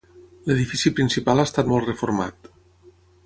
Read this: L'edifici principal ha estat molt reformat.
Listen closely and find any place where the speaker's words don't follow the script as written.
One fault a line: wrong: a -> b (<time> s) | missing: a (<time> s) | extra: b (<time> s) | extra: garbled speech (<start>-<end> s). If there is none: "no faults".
no faults